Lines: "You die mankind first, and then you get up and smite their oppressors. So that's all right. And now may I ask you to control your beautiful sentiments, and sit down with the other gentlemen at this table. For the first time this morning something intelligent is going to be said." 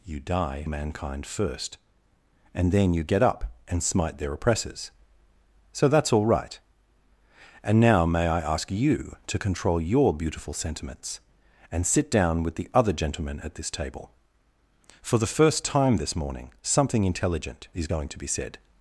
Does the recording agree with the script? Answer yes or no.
yes